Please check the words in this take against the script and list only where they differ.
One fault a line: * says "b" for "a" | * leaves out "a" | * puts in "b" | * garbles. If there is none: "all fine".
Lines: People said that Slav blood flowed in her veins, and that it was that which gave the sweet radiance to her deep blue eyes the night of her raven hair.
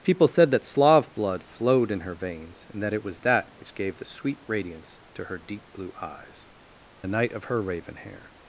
all fine